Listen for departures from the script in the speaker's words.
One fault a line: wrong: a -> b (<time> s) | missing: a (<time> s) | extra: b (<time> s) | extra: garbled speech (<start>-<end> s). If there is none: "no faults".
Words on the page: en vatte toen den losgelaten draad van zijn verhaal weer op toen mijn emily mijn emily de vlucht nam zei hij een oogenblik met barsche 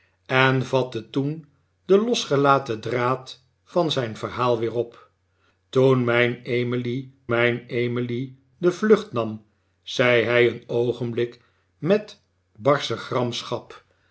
no faults